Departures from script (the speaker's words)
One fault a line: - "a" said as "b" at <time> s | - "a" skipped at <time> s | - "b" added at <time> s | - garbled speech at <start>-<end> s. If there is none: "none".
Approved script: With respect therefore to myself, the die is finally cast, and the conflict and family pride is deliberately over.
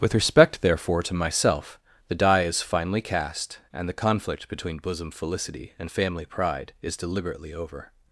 - "between bosom felicity" added at 4.5 s